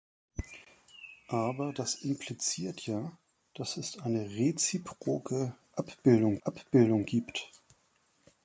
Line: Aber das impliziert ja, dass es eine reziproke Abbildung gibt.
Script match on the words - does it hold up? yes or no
no